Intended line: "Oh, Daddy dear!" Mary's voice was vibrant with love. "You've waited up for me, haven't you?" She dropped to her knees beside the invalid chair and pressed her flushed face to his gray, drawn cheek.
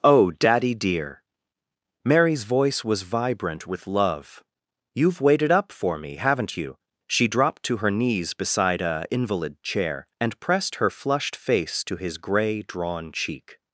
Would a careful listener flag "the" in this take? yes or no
yes